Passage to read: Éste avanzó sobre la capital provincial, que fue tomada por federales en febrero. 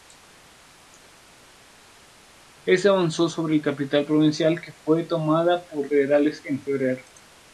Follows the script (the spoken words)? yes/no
yes